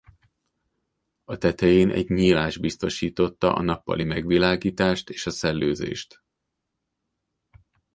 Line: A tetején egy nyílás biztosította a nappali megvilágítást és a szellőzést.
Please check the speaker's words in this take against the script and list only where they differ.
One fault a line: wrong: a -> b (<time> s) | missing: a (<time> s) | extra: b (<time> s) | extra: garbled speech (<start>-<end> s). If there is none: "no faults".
no faults